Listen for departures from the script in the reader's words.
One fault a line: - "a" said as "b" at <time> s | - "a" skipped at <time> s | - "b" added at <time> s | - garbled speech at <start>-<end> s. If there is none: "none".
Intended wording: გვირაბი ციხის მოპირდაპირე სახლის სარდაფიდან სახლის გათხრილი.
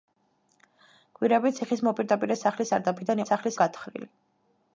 none